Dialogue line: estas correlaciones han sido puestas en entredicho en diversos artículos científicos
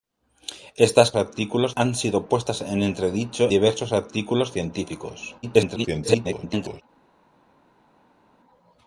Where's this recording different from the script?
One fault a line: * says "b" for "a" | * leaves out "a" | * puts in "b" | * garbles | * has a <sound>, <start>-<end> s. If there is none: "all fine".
* says "artículos" for "correlaciones"
* leaves out "en"
* garbles